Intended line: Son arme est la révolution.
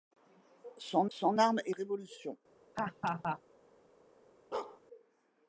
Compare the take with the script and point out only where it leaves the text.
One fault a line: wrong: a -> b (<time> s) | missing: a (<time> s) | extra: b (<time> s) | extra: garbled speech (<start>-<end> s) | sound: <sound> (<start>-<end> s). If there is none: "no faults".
extra: son (1.1 s)
missing: la (1.7 s)
sound: laugh (2.8-3.4 s)
sound: bark (4.5-4.8 s)